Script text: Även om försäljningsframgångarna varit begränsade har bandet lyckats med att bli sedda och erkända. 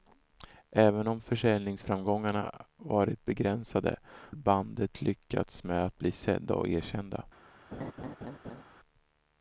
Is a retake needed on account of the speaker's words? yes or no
yes